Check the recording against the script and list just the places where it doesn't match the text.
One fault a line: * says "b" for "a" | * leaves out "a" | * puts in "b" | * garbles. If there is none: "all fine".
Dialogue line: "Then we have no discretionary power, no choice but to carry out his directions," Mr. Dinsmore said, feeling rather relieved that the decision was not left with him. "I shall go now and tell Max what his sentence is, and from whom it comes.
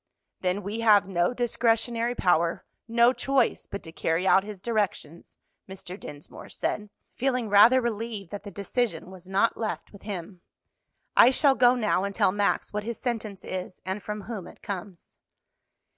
all fine